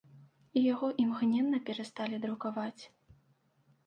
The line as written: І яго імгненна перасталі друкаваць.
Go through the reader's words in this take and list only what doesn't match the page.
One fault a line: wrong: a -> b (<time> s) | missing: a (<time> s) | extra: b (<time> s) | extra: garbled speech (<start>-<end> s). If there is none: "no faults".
no faults